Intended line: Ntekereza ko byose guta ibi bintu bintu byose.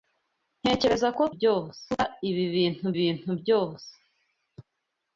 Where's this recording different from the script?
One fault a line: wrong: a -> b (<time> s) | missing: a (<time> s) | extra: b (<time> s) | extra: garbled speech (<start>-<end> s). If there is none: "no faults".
no faults